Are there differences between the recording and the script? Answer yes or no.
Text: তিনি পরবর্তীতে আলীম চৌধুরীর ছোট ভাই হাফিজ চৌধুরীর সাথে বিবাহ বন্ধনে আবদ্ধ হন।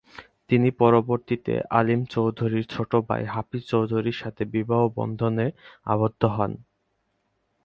no